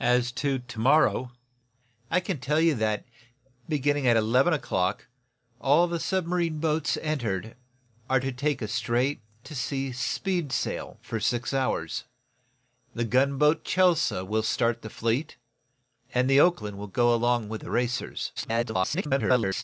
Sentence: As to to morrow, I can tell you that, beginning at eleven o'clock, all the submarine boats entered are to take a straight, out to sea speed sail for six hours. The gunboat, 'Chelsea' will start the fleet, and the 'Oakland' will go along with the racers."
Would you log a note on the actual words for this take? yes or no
yes